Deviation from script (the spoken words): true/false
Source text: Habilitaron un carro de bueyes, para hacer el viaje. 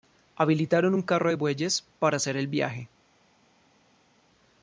false